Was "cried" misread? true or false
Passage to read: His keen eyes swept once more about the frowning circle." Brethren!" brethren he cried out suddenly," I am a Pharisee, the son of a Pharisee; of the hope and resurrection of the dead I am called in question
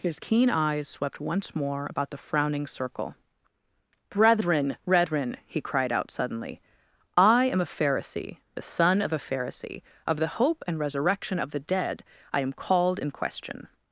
false